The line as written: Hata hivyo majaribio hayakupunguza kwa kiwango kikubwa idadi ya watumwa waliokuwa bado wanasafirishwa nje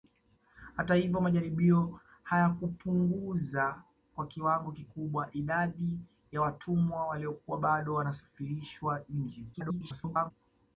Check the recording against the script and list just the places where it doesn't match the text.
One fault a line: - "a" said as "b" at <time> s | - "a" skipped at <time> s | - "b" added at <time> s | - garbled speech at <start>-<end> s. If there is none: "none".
- garbled speech at 9.5-10.3 s